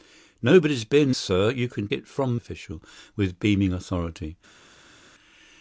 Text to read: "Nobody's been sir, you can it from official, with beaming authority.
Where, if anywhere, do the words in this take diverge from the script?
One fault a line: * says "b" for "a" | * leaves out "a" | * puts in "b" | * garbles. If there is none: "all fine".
all fine